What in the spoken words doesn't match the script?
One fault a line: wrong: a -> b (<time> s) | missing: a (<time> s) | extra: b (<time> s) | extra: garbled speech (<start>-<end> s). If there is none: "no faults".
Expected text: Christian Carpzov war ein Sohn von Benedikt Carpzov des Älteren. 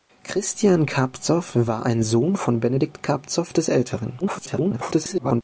extra: garbled speech (4.2-5.4 s)